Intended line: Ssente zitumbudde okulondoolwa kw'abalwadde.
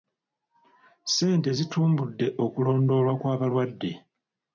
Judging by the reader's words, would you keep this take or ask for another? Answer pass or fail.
pass